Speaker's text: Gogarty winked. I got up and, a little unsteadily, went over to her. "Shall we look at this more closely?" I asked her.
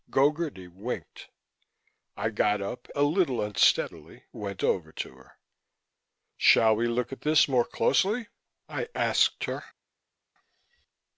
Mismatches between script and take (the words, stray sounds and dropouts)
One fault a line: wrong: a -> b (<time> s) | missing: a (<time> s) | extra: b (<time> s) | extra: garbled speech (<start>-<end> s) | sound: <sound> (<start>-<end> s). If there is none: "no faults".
missing: and (2.9 s)